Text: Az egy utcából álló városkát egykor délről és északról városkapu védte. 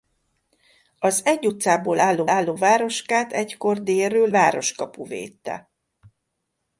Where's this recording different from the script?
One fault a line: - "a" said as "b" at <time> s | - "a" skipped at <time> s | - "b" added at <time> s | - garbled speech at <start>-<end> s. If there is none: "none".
- "álló" added at 2.3 s
- "és északról" skipped at 4.3 s